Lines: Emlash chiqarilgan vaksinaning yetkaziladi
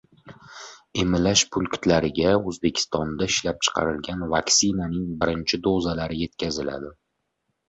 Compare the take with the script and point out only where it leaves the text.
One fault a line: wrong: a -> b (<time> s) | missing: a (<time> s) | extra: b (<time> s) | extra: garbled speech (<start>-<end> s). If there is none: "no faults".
extra: punktlariga O‘zbekistonda ishlab (1.6 s)
extra: birinchi dozalari (5.2 s)